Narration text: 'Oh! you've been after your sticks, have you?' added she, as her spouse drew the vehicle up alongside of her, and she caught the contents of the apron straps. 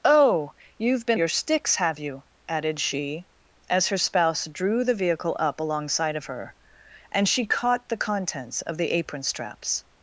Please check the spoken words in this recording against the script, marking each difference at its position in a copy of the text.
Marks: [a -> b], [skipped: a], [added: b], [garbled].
'Oh! you've been [skipped: after] your sticks, have you?' added she, as her spouse drew the vehicle up alongside of her, and she caught the contents of the apron straps.